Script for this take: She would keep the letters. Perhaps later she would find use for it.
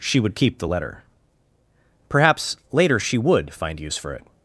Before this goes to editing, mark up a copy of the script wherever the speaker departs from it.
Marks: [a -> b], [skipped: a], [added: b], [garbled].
She would keep the [letters. -> letter] Perhaps later she would find use for it.